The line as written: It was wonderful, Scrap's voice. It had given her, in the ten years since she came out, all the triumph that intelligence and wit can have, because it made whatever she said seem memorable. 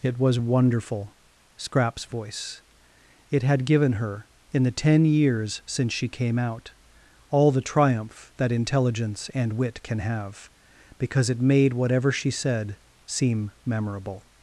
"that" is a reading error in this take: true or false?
false